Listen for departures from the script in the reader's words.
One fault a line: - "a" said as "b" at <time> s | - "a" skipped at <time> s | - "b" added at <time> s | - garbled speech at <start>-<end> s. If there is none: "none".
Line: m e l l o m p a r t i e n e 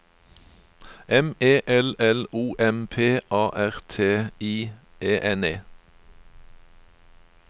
none